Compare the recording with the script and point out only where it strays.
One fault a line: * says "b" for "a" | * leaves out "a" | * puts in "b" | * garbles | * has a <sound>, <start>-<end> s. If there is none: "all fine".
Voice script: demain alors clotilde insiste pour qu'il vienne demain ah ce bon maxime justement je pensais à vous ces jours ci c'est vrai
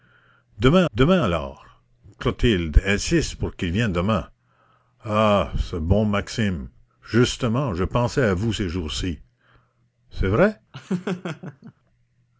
* puts in "demain"
* has a laugh, 10.7-11.7 s